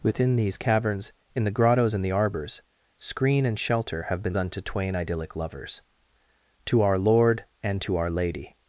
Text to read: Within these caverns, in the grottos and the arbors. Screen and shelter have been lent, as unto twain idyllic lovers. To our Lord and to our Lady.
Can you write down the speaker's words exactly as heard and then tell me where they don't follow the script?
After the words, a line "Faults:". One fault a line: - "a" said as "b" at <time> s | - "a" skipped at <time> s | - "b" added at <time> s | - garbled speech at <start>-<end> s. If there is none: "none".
Within these caverns, in the grottos and the arbors. Screen and shelter have been unto twain idyllic lovers. To our Lord and to our Lady.
Faults:
- "lent as" skipped at 4.3 s